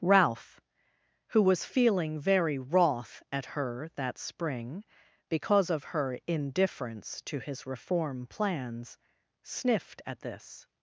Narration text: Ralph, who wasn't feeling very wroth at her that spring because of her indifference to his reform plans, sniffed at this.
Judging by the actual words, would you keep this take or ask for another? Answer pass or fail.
fail